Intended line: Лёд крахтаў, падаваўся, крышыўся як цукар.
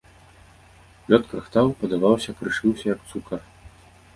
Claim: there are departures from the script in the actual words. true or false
false